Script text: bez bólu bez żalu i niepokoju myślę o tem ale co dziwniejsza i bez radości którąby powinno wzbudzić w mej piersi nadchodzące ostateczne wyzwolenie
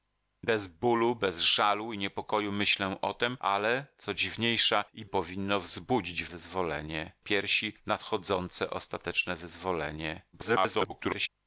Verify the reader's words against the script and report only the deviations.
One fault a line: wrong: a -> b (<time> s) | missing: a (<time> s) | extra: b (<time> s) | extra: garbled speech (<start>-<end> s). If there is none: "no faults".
missing: bez radości którąby (5.0 s)
wrong: mej -> wyzwolenie (6.3 s)
extra: garbled speech (10.3-11.3 s)